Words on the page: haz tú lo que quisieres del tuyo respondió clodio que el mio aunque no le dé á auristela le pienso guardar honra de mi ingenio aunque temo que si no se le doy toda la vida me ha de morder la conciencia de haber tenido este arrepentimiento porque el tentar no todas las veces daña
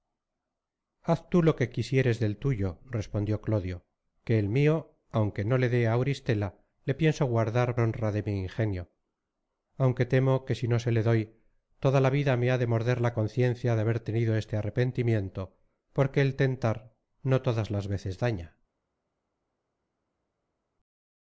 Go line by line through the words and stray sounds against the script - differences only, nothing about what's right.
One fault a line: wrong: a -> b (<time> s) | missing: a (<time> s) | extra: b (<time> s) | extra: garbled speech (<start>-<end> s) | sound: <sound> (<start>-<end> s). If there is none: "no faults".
no faults